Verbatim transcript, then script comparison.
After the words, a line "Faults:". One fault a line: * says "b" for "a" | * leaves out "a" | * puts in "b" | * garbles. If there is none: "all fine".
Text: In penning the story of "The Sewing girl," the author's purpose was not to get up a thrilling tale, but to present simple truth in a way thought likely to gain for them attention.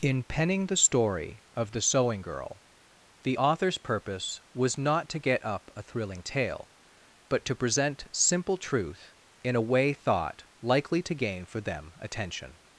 In penning the story of "The Sewing girl," the author's purpose was not to get up a thrilling tale, but to present simple truth in a way thought likely to gain for them attention.
Faults:
all fine